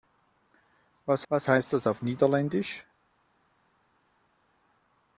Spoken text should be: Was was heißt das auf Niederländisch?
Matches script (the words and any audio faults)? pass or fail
pass